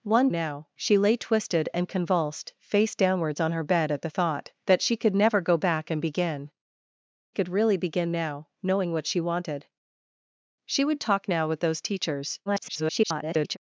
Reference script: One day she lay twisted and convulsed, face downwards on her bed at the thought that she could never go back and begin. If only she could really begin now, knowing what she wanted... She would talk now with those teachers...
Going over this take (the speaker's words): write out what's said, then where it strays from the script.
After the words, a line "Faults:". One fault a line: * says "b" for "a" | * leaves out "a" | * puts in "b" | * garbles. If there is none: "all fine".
One now she lay twisted and convulsed, face downwards on her bed at the thought that she could never go back and begin. Could really begin now, knowing what she wanted... She would talk now with those teachers... [garbled]
Faults:
* says "now" for "day"
* leaves out "If only she"
* garbles